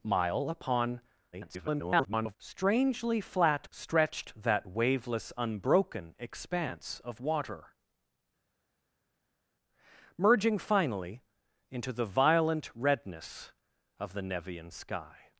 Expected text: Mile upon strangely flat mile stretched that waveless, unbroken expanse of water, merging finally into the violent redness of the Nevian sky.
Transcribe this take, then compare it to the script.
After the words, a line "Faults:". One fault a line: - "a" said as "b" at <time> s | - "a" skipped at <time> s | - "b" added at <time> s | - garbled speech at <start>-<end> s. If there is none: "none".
Mile upon [garbled] strangely flat stretched that waveless, unbroken expanse of water, merging finally into the violent redness of the Nevian sky.
Faults:
- garbled speech at 1.3-2.4 s
- "mile" skipped at 3.7 s